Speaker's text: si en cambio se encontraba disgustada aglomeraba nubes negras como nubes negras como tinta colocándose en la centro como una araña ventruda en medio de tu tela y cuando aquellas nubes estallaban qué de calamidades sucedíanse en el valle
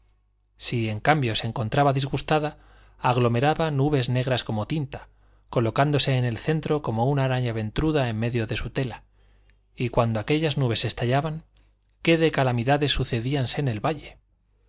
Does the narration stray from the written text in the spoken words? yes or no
yes